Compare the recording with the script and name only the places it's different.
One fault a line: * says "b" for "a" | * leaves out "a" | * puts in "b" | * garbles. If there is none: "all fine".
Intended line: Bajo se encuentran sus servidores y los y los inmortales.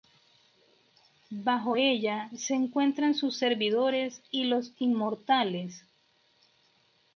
* puts in "ella"
* leaves out "y los"